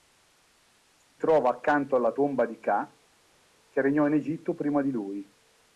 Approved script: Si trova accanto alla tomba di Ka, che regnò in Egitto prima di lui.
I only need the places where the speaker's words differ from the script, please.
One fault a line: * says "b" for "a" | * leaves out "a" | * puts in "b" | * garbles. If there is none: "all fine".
all fine